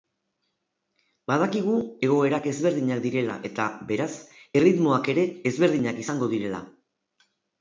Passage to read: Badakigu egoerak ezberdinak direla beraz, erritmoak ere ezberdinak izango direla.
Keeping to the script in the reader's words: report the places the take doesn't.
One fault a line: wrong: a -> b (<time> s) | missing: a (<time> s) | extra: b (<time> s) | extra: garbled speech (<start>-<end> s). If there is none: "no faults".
extra: eta (3.5 s)